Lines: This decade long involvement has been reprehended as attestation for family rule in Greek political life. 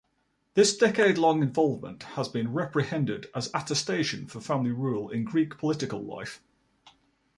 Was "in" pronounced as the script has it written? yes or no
yes